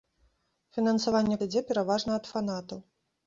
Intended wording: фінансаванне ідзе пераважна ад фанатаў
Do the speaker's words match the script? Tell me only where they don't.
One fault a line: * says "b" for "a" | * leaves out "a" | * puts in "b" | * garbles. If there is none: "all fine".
all fine